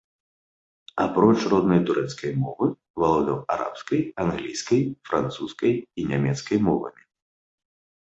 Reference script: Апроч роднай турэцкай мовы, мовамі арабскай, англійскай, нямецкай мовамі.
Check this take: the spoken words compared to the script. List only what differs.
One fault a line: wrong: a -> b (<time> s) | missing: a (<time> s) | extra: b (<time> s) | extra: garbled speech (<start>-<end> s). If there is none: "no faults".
wrong: мовамі -> валодаў (3.0 s)
extra: французскай і (5.1 s)